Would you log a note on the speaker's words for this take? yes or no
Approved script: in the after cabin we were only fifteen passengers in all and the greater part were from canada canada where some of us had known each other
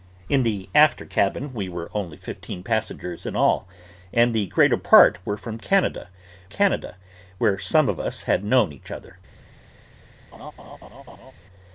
no